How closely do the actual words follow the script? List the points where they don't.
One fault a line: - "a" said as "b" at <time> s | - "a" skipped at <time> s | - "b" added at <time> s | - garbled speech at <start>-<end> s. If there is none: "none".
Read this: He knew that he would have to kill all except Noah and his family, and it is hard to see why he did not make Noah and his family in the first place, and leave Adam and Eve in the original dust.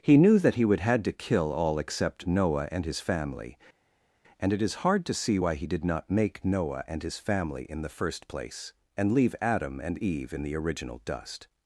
- "have" said as "had" at 0.8 s